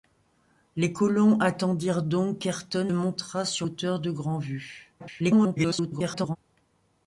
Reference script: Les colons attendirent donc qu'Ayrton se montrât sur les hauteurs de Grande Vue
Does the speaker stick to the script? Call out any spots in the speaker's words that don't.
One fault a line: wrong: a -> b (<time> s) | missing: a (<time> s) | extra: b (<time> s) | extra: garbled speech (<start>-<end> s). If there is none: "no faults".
missing: se (2.9 s)
missing: les (3.7 s)
extra: garbled speech (5.0-6.4 s)